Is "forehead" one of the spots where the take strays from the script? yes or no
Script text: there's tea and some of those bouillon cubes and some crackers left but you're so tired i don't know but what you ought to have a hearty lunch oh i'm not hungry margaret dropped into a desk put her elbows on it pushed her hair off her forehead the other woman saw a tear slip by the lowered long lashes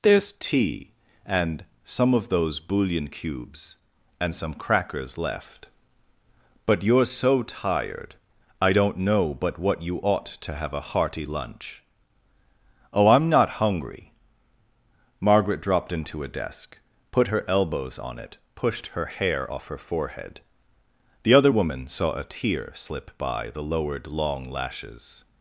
no